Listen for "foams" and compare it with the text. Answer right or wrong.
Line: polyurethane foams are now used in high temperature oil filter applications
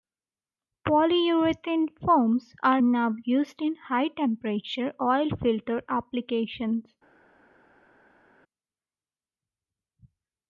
right